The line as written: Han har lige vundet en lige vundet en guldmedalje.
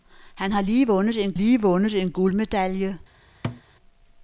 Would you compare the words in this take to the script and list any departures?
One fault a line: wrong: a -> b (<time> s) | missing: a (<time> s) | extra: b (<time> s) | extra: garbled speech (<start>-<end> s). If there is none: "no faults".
no faults